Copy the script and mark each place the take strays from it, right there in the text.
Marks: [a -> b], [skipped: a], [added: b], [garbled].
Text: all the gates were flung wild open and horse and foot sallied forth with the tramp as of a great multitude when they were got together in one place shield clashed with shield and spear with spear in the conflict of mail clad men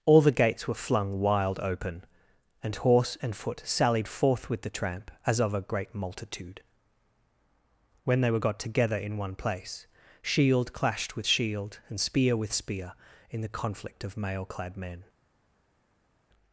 all the gates were flung wild open and horse and foot sallied forth with the tramp as of a great multitude when they were got together in one place shield clashed with shield and spear with spear in the conflict of mail clad men